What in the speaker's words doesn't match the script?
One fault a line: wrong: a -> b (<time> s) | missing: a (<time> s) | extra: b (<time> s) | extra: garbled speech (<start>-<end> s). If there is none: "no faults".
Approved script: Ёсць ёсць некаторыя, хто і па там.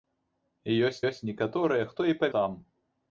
no faults